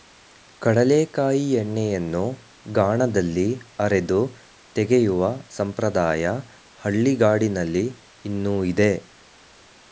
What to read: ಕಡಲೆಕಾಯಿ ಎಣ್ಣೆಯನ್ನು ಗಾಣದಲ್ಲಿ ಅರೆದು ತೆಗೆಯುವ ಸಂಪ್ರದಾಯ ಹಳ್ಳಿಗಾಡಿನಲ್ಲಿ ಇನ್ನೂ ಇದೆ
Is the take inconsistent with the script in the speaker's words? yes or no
no